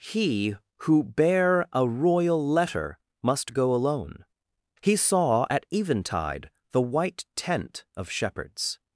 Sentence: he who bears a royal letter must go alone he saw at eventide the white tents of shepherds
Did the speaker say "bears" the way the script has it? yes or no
no